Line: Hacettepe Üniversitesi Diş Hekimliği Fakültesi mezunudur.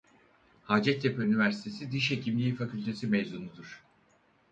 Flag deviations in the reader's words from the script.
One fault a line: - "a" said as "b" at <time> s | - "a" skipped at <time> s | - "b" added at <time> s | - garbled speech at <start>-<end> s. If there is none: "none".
none